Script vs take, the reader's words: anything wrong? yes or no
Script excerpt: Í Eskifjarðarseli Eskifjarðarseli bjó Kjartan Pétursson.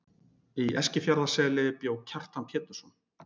yes